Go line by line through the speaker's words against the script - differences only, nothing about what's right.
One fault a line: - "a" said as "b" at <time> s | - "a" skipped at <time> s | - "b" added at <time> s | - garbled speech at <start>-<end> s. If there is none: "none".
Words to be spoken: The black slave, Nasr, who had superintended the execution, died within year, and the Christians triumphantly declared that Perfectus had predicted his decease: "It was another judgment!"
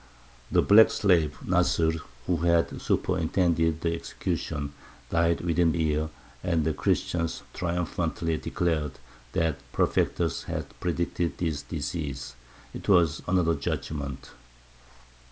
none